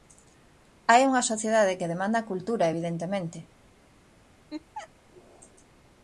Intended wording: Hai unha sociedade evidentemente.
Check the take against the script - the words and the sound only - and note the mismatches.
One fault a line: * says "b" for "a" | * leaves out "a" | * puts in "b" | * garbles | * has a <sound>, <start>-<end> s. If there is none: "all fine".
* puts in "que demanda cultura"
* has a laugh, 4.5-4.9 s